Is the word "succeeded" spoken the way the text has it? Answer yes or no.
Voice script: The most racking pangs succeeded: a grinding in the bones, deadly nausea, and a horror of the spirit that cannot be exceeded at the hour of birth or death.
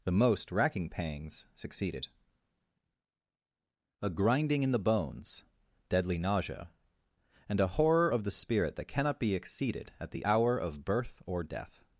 yes